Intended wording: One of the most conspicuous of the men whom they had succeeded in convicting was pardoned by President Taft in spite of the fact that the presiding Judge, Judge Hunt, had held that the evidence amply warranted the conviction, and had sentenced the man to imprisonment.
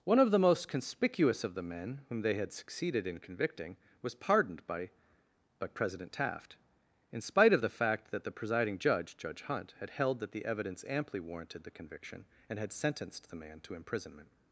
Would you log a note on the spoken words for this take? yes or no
yes